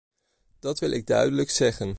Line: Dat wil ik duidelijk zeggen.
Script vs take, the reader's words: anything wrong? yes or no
no